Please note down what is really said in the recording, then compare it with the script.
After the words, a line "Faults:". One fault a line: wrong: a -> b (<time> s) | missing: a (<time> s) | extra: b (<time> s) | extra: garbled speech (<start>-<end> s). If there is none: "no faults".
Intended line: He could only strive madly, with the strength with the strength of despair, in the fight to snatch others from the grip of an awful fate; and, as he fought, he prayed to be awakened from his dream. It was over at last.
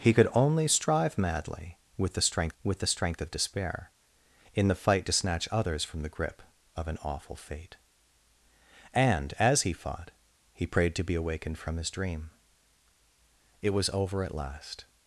He could only strive madly, with the strength with the strength of despair, in the fight to snatch others from the grip of an awful fate; and, as he fought, he prayed to be awakened from his dream. It was over at last.
Faults:
no faults